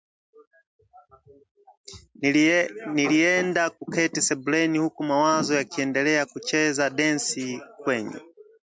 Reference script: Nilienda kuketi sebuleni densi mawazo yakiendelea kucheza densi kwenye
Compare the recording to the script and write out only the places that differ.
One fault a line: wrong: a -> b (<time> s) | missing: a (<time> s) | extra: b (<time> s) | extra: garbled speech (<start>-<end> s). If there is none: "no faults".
wrong: densi -> huku (4.8 s)